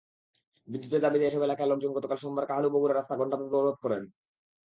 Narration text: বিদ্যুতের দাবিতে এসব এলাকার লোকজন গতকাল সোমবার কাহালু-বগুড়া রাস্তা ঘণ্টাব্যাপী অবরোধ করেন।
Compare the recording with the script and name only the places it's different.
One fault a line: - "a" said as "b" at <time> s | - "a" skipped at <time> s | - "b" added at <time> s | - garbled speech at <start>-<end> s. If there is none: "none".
none